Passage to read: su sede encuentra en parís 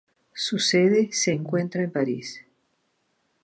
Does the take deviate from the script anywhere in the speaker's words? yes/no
yes